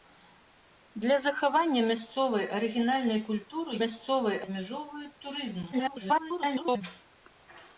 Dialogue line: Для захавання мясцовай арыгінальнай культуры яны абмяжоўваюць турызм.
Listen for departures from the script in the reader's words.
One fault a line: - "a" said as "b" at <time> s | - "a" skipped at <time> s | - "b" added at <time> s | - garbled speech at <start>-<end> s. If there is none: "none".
- "яны" said as "мясцовай" at 3.8 s
- garbled speech at 5.7-6.8 s